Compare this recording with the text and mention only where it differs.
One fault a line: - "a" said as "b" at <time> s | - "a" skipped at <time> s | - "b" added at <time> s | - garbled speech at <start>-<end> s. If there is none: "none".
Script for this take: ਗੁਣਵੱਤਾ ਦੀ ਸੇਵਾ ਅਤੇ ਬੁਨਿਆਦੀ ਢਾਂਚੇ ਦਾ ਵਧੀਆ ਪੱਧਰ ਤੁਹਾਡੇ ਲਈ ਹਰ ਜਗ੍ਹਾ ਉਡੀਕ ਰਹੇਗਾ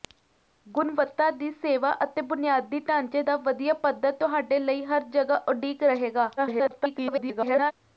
- garbled speech at 6.4-7.7 s